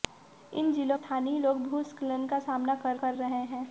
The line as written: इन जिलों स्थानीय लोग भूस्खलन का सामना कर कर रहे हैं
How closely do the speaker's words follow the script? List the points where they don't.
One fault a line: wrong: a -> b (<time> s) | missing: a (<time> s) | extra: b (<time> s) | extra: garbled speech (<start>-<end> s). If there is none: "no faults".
no faults